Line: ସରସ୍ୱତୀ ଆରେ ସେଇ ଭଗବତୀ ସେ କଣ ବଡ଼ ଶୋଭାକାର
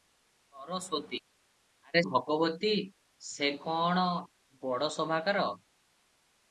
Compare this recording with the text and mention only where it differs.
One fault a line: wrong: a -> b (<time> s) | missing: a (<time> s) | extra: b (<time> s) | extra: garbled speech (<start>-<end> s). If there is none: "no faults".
missing: ସେଇ (2.0 s)